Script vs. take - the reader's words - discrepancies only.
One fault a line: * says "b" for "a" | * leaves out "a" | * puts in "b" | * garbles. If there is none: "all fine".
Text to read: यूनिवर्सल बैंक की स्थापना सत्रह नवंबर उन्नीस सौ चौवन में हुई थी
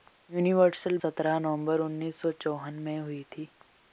* leaves out "बैंक की स्थापना"